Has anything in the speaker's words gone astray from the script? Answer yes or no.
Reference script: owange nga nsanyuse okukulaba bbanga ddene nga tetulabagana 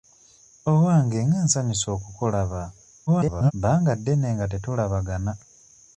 yes